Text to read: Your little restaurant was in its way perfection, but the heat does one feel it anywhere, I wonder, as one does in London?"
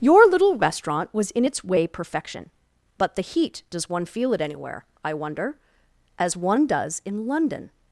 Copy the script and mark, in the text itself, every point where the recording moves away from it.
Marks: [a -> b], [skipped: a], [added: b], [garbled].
Your little restaurant was in its way perfection, but the heat does one feel it anywhere, I wonder, as one does in London?"